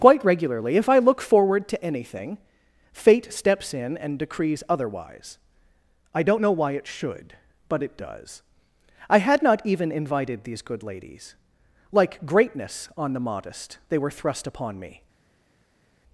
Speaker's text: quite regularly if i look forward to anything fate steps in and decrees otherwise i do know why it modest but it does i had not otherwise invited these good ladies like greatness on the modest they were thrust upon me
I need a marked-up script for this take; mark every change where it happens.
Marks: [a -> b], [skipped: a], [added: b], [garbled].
quite regularly if i look forward to anything fate steps in and decrees otherwise i [do -> don't] know why it [modest -> should] but it does i had not [otherwise -> even] invited these good ladies like greatness on the modest they were thrust upon me